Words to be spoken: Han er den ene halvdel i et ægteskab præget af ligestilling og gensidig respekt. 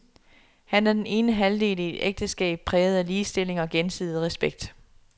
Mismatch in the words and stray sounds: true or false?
false